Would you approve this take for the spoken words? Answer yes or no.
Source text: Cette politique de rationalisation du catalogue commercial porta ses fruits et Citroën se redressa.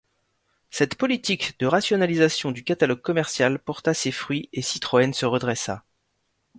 yes